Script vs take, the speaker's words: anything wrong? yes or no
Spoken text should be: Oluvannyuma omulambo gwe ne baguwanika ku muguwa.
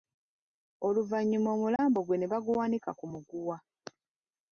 no